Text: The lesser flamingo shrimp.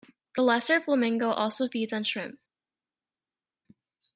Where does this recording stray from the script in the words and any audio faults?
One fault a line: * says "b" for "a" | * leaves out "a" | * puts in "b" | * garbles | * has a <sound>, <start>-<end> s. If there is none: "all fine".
* puts in "also feeds on"